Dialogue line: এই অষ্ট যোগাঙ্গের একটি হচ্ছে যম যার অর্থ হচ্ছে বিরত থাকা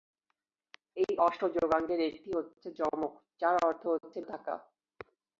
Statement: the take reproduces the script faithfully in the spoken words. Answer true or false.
false